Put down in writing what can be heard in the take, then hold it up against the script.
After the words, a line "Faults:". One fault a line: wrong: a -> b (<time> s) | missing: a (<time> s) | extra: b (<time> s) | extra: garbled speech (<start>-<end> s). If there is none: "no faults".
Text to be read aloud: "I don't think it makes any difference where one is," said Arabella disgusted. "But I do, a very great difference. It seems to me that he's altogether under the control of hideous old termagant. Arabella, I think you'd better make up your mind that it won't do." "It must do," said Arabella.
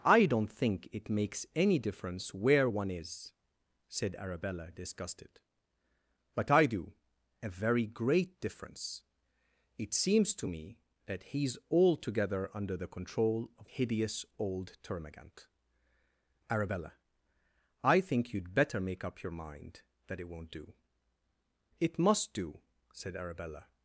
"I don't think it makes any difference where one is," said Arabella disgusted. "But I do, a very great difference. It seems to me that he's altogether under the control of hideous old termagant. Arabella, I think you'd better make up your mind that it won't do." "It must do," said Arabella.
Faults:
no faults